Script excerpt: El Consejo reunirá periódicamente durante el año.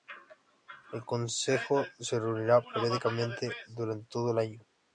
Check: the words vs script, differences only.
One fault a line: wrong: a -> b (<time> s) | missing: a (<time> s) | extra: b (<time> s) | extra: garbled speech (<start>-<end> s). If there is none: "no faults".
extra: se (2.0 s)
extra: todo (4.1 s)